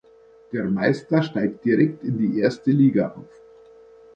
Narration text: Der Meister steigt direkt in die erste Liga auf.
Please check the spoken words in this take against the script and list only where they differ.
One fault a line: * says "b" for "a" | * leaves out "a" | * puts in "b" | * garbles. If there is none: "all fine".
all fine